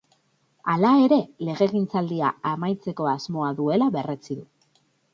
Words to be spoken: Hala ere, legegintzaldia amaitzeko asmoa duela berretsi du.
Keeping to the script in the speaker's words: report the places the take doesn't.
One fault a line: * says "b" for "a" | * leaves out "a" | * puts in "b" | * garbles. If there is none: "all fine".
all fine